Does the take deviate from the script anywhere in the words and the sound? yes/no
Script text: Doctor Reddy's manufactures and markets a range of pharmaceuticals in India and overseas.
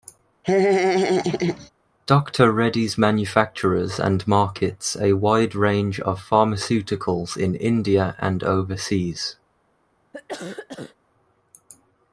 yes